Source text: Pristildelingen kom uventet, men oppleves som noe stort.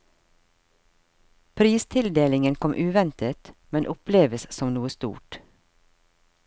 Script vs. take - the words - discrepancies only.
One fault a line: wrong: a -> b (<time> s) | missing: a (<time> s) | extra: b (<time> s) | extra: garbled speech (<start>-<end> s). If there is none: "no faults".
no faults